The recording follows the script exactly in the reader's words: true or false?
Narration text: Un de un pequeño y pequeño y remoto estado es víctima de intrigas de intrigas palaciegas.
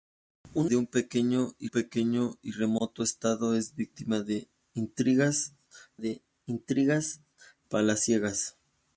true